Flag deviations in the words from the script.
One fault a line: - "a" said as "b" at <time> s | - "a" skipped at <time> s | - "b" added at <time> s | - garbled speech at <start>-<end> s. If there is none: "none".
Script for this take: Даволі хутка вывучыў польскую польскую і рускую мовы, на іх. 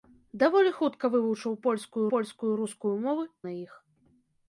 none